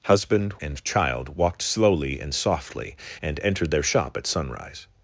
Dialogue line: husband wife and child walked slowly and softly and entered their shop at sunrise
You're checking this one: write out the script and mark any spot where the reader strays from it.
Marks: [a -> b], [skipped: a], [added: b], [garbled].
husband [skipped: wife] and child walked slowly and softly and entered their shop at sunrise